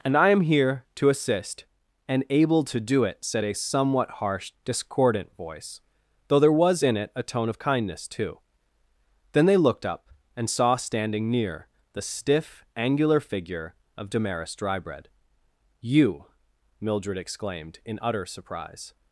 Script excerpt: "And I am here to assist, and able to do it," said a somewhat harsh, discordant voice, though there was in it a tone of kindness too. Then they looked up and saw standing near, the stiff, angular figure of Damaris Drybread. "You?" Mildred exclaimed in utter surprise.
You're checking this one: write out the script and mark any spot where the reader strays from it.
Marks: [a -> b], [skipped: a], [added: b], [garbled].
"And I am here to assist, and able to do it," said a somewhat harsh, discordant voice, though there was in it a tone of kindness too. Then they looked up and saw standing near, the stiff, angular figure of Damaris Drybread. "You?" Mildred exclaimed in utter surprise.